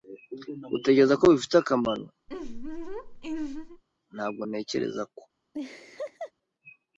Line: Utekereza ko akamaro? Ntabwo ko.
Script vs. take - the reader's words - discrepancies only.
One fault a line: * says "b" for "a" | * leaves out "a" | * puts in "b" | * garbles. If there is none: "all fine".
* puts in "bifite"
* puts in "ntekereza"